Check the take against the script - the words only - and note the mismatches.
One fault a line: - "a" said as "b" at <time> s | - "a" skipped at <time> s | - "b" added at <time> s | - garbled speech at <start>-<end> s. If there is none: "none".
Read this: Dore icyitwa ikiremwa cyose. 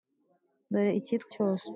- "ikiremwa" skipped at 1.3 s